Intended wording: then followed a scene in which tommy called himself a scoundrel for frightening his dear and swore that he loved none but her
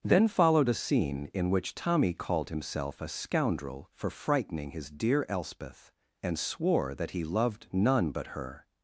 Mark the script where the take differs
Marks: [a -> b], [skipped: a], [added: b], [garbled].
then followed a scene in which tommy called himself a scoundrel for frightening his dear [added: elspeth] and swore that he loved none but her